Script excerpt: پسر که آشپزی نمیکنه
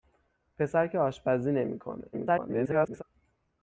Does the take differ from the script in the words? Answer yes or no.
yes